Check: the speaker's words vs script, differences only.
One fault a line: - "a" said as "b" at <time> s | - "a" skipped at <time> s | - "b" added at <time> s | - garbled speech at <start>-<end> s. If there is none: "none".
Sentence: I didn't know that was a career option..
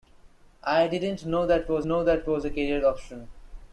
- "know that was" added at 1.8 s